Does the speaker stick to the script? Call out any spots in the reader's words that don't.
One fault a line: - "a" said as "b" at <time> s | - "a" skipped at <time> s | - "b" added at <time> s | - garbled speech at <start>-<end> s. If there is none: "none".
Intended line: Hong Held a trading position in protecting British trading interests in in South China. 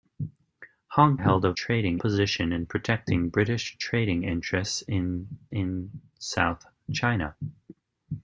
none